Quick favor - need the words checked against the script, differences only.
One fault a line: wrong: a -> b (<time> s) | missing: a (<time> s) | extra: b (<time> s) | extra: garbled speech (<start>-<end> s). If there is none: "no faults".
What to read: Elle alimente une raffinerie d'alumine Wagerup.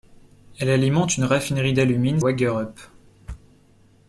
no faults